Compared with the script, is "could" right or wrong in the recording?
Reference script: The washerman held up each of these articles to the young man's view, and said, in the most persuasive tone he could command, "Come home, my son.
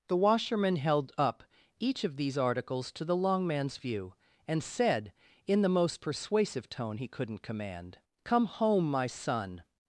wrong